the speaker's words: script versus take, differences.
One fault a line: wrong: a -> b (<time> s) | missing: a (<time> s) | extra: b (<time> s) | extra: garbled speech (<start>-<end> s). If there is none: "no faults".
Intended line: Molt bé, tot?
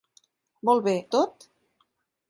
no faults